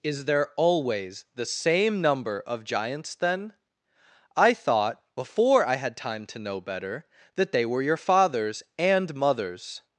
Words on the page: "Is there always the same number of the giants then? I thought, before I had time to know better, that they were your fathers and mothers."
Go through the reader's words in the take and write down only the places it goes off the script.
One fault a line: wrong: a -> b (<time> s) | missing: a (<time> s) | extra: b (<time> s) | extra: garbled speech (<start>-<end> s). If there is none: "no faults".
missing: the (2.6 s)